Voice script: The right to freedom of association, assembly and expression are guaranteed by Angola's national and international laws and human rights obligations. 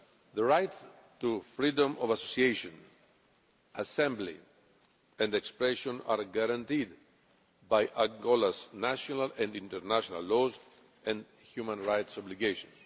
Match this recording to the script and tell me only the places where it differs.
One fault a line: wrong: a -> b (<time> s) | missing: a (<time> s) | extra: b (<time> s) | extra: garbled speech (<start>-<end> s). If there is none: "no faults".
no faults